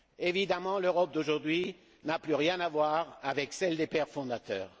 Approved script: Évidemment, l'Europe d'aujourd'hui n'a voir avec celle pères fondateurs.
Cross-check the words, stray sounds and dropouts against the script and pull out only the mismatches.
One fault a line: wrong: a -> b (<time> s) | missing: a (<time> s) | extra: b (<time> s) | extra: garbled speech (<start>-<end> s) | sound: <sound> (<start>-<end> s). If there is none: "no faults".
extra: plus rien à (2.2 s)
extra: des (3.8 s)